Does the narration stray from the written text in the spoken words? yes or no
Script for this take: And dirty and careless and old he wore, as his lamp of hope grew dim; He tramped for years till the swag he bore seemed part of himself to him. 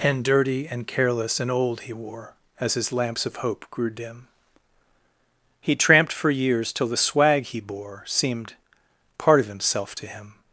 yes